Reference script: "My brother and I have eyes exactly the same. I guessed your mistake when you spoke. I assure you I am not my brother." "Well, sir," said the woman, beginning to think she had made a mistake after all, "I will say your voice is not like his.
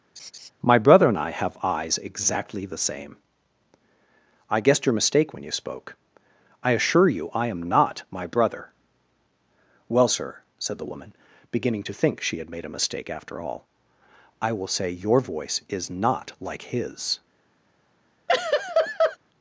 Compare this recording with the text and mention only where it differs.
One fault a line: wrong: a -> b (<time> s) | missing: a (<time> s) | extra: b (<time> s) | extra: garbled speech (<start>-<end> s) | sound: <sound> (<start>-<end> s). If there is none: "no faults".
sound: laugh (0.2-0.5 s)
sound: laugh (18.3-19.2 s)